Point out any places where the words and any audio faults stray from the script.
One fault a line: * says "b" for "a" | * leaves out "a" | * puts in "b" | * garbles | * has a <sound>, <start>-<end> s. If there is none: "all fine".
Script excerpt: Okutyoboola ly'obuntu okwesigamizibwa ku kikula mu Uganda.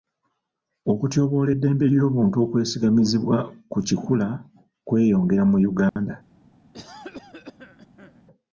* puts in "eddembe"
* puts in "kweyongera"
* has a dropout, 5.9-6.0 s
* has a cough, 6.7-8.2 s